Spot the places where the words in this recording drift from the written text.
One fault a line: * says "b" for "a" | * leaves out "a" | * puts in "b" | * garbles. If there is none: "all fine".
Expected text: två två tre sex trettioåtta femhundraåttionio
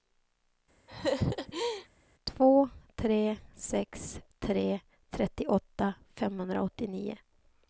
* leaves out "två"
* puts in "tre"